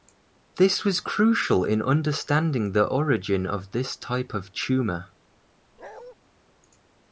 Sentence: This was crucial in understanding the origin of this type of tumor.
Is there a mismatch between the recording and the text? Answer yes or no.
no